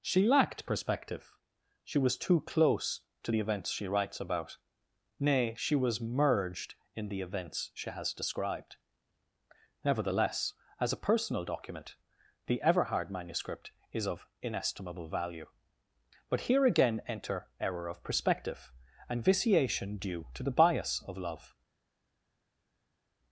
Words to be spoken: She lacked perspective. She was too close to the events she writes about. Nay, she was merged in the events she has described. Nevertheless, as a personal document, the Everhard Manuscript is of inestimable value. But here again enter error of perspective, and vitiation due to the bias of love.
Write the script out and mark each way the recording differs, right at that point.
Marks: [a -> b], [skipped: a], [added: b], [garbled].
She lacked perspective. She was too close to the events she writes about. Nay, she was merged in the events she has described. Nevertheless, as a personal document, the Everhard Manuscript is of inestimable value. But here again enter error of perspective, and vitiation due to the bias of love.